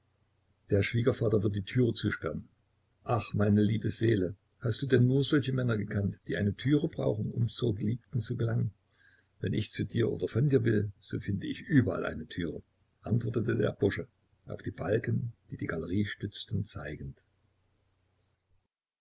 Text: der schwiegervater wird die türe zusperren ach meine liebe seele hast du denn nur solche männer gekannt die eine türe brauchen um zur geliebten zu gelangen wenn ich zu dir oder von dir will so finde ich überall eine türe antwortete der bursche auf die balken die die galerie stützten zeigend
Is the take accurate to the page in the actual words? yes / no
yes